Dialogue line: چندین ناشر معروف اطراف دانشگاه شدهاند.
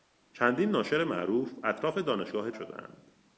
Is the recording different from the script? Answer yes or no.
no